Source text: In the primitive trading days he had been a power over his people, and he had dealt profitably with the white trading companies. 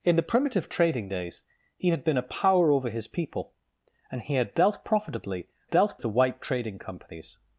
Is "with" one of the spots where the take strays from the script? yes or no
yes